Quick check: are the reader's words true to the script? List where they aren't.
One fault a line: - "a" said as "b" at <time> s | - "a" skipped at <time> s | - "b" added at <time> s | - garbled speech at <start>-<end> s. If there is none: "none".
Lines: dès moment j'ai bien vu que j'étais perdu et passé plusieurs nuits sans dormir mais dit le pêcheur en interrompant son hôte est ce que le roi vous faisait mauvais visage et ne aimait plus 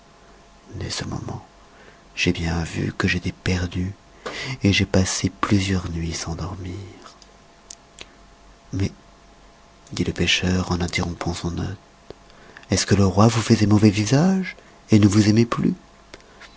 - "ce" added at 0.9 s
- "j'ai" added at 4.7 s
- "vous" added at 15.1 s